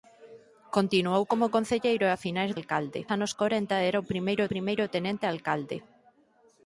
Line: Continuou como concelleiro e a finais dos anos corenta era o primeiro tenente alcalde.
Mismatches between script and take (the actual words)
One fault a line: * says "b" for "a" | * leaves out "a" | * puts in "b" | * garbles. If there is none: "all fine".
* says "alcalde" for "dos"
* puts in "primeiro"